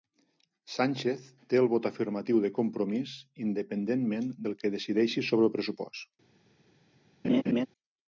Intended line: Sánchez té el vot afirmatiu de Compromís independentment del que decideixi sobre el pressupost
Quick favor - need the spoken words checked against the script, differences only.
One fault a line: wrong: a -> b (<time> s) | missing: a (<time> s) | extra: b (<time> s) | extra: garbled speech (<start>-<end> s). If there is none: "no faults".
no faults